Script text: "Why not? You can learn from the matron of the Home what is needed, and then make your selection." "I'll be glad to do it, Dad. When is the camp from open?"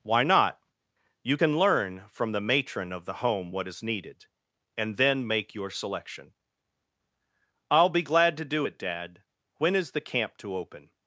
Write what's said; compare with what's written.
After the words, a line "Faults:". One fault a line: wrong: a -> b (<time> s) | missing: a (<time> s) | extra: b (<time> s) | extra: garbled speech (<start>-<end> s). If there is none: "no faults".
"Why not? You can learn from the matron of the Home what is needed, and then make your selection." "I'll be glad to do it, Dad. When is the camp to open?"
Faults:
wrong: from -> to (10.4 s)